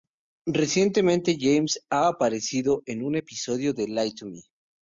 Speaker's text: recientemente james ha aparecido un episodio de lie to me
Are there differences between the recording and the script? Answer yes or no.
yes